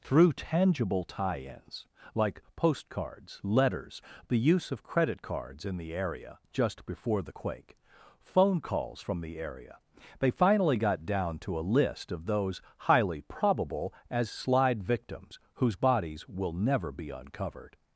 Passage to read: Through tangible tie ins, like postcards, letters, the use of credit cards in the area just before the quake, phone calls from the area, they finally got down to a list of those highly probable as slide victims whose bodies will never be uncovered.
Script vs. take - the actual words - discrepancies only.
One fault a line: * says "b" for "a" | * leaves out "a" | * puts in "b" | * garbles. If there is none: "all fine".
all fine